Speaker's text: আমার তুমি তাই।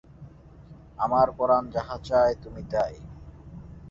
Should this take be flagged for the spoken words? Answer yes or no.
yes